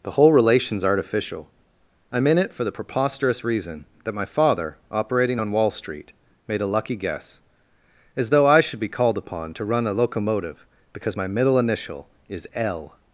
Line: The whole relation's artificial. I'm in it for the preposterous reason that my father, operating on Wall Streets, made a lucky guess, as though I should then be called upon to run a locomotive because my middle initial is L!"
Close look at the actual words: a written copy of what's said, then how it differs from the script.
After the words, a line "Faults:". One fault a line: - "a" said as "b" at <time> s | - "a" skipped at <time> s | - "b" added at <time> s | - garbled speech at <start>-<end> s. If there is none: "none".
The whole relation's artificial. I'm in it for the preposterous reason that my father, operating on Wall Street, made a lucky guess, as though I should be called upon to run a locomotive because my middle initial is L!"
Faults:
- "Streets" said as "Street" at 5.7 s
- "then" skipped at 8.8 s